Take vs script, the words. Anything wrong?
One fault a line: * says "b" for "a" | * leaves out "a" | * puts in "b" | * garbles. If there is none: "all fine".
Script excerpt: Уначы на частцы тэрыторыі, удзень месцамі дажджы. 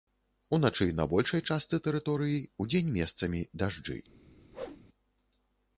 * puts in "большай"